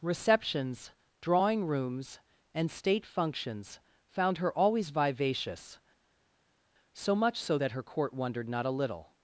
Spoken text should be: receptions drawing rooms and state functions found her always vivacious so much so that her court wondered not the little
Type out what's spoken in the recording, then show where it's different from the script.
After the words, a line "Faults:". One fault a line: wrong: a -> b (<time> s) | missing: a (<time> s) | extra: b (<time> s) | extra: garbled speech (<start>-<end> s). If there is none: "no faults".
receptions drawing rooms and state functions found her always vivacious so much so that her court wondered not a little
Faults:
wrong: the -> a (8.6 s)